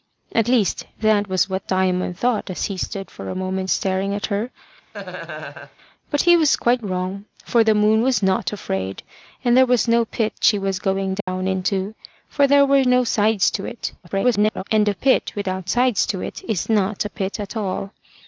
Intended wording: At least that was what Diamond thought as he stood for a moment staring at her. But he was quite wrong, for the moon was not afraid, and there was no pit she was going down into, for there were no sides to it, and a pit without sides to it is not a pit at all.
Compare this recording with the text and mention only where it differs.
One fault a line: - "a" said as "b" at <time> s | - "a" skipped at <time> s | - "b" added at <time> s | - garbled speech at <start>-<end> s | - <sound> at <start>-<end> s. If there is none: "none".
- laugh at 4.9-5.8 s
- dropout at 11.2-11.3 s
- garbled speech at 14.0-14.6 s